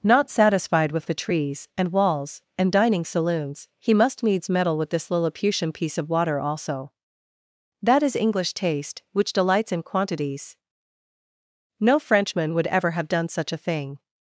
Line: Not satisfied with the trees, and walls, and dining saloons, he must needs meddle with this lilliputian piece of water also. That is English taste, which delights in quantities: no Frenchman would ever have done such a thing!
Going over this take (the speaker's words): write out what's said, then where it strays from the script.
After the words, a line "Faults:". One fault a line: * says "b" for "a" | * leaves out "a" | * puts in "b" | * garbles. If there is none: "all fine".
Not satisfied with the trees, and walls, and dining saloons, he must needs meddle with this lilliputian piece of water also. That is English taste, which delights in quantities: no Frenchman would ever have done such a thing!
Faults:
all fine